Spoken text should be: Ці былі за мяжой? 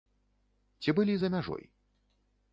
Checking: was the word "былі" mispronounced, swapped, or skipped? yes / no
no